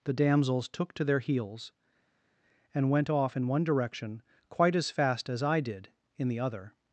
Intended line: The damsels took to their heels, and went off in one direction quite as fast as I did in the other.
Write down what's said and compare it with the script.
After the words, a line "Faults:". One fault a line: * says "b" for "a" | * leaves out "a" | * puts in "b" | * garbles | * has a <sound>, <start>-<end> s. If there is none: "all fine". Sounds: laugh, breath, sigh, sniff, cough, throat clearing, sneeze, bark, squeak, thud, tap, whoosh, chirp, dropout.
The damsels took to their heels, and went off in one direction quite as fast as I did in the other.
Faults:
all fine